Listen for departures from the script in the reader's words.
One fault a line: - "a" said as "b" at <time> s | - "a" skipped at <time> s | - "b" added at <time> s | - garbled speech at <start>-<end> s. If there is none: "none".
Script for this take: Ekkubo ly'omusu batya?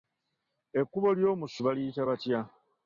- "baliyita" added at 1.7 s